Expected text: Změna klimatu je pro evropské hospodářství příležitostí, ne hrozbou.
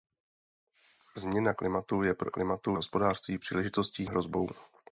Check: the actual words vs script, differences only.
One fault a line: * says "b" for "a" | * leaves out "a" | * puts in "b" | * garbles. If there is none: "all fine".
* says "klimatu" for "evropské"
* leaves out "ne"